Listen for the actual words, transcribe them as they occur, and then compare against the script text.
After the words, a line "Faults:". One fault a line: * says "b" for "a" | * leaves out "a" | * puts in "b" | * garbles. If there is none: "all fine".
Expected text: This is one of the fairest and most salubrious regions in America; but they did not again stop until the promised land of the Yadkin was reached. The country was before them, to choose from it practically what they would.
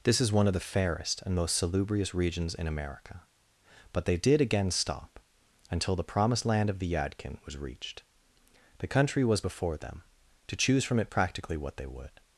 This is one of the fairest and most salubrious regions in America; but they did again stop until the promised land of the Yadkin was reached. The country was before them, to choose from it practically what they would.
Faults:
* leaves out "not"